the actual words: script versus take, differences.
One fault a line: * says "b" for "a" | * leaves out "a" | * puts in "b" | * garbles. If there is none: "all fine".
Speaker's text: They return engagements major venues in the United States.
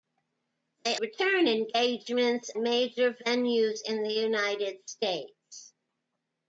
all fine